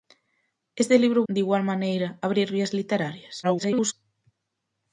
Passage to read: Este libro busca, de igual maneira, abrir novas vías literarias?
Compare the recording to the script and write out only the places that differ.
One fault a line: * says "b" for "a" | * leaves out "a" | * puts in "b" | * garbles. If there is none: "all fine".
* leaves out "busca"
* leaves out "novas"
* garbles